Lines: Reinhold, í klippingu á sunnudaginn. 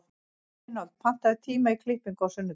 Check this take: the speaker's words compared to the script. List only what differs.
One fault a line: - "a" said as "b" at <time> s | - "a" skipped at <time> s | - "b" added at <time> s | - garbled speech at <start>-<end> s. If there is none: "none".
- "pantaðu tíma" added at 1.1 s